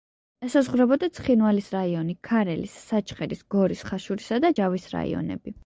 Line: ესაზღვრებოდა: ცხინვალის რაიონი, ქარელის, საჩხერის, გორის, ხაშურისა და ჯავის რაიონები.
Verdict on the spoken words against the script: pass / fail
pass